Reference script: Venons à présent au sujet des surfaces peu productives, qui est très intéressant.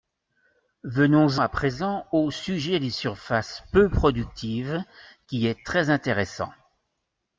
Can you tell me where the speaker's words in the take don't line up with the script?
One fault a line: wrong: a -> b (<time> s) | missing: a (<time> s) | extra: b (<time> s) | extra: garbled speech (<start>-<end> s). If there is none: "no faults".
no faults